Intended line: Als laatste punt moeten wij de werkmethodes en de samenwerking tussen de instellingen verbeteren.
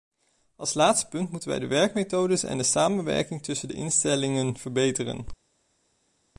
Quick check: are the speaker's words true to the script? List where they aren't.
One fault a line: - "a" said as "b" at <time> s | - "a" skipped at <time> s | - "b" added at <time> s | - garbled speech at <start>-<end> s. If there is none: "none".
none